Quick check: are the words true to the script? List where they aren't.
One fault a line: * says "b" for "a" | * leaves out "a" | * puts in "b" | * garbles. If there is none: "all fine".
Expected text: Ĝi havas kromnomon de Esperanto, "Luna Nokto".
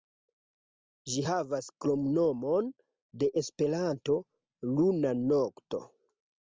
all fine